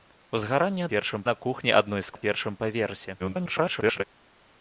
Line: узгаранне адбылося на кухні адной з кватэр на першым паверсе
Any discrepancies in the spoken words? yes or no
yes